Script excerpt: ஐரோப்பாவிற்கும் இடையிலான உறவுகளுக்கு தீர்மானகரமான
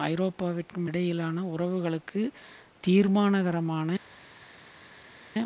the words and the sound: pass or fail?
pass